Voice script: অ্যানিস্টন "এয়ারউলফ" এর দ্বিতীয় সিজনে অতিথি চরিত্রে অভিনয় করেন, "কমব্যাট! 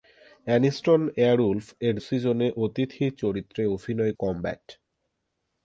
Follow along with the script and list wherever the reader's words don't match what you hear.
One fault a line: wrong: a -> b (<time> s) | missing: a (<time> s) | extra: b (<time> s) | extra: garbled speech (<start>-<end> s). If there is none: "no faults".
missing: দ্বিতীয় (1.9 s)
missing: করেন (4.1 s)